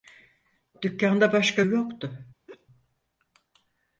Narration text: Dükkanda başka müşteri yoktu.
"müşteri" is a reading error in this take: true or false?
true